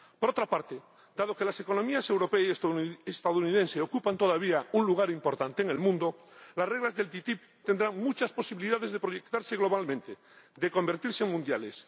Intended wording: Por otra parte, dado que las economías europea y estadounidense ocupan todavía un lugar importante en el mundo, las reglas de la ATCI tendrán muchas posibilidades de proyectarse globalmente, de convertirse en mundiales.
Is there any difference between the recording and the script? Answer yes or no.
no